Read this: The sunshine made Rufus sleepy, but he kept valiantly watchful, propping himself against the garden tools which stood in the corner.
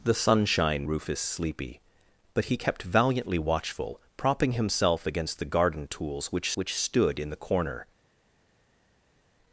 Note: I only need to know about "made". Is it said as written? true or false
false